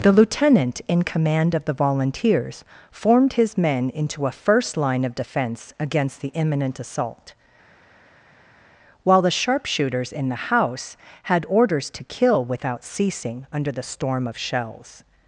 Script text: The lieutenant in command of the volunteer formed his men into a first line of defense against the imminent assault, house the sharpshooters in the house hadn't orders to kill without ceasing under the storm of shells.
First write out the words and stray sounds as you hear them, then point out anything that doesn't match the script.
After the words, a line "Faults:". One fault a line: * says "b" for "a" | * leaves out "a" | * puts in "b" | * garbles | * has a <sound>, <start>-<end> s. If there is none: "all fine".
The lieutenant in command of the volunteers formed his men into a first line of defense against the imminent assault, while the sharpshooters in the house had orders to kill without ceasing under the storm of shells.
Faults:
* says "volunteers" for "volunteer"
* says "while" for "house"
* says "had" for "hadn't"